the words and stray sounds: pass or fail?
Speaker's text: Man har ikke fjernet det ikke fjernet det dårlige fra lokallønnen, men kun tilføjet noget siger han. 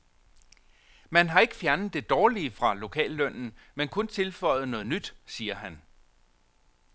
fail